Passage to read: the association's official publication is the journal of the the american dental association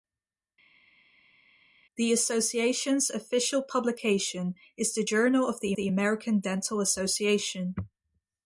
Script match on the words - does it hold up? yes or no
yes